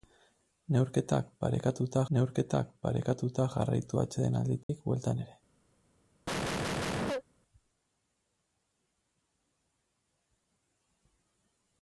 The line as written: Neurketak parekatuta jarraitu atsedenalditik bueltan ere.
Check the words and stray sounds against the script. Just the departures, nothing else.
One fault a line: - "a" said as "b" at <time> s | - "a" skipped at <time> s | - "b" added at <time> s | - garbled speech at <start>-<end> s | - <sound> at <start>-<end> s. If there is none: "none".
- "neurketak parekatuta" added at 2.2 s
- dropout at 4.6-4.7 s
- cough at 6.3-7.2 s